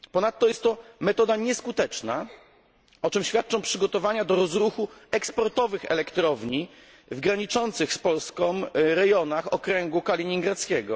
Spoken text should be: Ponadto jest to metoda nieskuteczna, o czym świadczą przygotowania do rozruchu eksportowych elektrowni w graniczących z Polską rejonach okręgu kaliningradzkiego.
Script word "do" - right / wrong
right